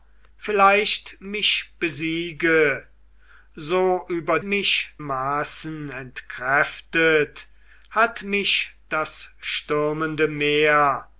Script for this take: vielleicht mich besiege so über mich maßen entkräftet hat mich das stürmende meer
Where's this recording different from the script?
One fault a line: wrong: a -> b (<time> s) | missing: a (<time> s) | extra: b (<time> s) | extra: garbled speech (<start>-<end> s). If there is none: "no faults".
no faults